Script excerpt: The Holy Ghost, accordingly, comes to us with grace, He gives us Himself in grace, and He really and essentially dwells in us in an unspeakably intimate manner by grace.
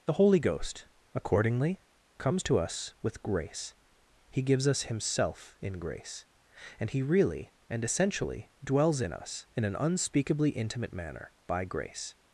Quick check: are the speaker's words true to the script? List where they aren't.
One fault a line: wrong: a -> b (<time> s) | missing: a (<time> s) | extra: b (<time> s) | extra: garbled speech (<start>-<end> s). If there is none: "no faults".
no faults